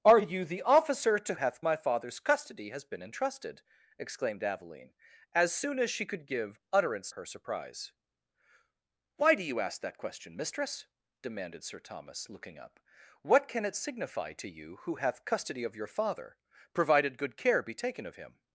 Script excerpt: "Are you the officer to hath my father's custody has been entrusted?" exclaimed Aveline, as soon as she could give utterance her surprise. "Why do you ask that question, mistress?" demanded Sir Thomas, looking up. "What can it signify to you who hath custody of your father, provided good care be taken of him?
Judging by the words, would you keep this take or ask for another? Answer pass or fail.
pass